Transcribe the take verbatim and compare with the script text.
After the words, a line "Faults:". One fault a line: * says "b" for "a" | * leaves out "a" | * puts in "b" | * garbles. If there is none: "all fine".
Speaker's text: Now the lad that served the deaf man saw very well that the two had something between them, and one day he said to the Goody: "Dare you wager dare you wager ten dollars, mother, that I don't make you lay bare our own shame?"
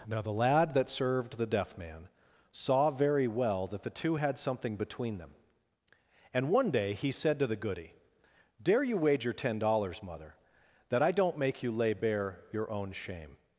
Now the lad that served the deaf man saw very well that the two had something between them, and one day he said to the Goody: "Dare you wager ten dollars, mother, that I don't make you lay bare your own shame?"
Faults:
* leaves out "dare you wager"
* says "your" for "our"